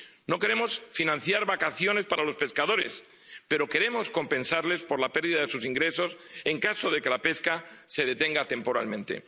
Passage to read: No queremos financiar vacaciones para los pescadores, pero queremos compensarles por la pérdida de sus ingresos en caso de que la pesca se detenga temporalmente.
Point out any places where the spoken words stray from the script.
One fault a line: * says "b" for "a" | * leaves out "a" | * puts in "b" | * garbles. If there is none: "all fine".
all fine